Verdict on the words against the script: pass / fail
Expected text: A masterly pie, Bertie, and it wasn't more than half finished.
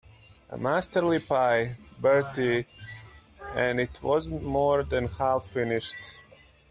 pass